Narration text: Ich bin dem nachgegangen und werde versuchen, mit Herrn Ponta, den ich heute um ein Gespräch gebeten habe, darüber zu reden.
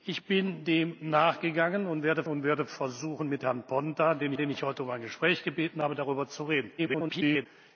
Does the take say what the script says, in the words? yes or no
no